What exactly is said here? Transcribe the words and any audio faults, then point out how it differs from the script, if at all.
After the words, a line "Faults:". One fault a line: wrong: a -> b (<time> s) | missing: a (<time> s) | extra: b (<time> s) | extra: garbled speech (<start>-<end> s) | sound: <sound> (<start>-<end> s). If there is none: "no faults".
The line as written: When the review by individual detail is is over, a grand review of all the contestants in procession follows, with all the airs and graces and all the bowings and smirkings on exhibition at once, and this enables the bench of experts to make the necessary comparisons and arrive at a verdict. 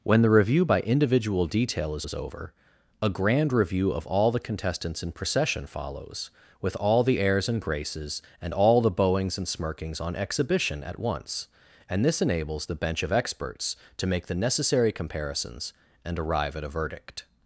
When the review by individual detail is is over, a grand review of all the contestants in procession follows, with all the airs and graces and all the bowings and smirkings on exhibition at once, and this enables the bench of experts to make the necessary comparisons and arrive at a verdict.
Faults:
no faults